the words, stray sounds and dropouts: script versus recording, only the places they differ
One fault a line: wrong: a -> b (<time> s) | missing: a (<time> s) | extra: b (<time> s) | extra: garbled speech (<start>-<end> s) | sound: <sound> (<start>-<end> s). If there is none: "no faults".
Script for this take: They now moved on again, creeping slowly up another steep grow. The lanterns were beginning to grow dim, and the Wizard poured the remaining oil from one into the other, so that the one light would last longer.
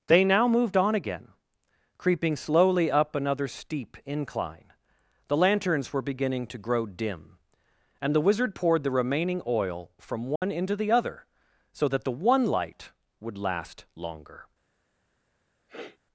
wrong: grow -> incline (4.0 s)
sound: dropout (10.4-10.4 s)
sound: sniff (15.7-16.0 s)